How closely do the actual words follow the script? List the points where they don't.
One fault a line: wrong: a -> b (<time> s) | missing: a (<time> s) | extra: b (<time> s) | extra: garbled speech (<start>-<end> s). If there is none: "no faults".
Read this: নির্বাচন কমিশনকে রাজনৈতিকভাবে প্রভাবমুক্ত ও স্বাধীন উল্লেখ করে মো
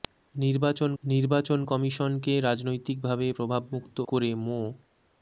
extra: নির্বাচন (1.0 s)
missing: ও স্বাধীন উল্লেখ (4.0 s)